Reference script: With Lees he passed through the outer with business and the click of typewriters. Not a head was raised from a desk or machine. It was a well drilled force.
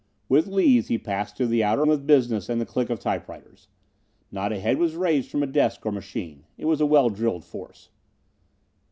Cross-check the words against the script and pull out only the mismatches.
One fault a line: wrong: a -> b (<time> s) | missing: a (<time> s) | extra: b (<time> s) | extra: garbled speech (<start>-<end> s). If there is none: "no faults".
no faults